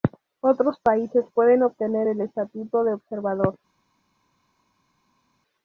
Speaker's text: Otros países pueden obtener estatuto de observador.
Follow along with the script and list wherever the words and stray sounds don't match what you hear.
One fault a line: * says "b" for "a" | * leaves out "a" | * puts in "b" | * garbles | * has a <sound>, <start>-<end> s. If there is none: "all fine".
* puts in "el"